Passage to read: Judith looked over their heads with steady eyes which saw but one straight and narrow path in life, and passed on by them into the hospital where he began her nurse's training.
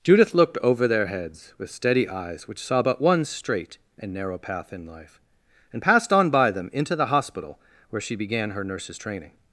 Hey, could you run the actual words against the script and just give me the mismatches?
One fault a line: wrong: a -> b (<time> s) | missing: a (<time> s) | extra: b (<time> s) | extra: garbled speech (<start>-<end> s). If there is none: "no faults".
wrong: he -> she (8.0 s)